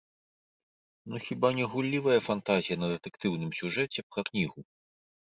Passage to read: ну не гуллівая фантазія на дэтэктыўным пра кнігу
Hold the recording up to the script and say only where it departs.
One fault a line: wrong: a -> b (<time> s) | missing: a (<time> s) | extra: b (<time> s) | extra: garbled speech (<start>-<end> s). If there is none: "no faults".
extra: хіба (1.2 s)
extra: сюжэце (3.6 s)